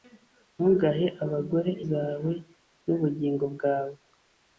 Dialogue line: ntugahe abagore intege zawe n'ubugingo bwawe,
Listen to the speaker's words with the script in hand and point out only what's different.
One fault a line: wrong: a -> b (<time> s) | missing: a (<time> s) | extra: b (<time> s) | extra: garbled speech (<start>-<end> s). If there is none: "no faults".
missing: intege (1.7 s)